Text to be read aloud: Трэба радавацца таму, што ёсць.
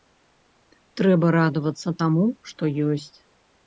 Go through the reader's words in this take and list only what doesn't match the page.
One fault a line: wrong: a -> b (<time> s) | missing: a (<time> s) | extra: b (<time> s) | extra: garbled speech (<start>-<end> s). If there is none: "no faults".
no faults